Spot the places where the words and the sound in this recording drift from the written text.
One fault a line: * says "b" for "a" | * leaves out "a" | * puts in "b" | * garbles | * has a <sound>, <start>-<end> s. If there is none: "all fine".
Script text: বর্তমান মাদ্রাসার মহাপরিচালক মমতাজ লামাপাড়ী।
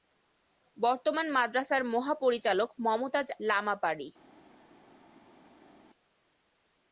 all fine